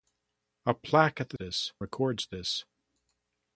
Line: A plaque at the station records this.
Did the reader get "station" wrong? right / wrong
wrong